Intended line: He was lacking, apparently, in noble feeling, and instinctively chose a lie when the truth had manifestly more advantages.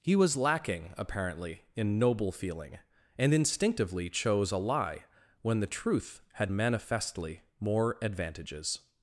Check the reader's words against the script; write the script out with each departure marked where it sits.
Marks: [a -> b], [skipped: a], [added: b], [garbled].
He was lacking, apparently, in noble feeling, and instinctively chose a lie when the truth had manifestly more advantages.